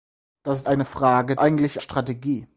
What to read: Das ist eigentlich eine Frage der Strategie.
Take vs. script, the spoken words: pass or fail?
fail